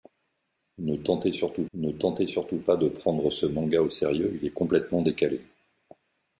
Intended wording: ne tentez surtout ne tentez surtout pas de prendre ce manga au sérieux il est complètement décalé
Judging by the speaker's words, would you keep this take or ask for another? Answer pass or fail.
pass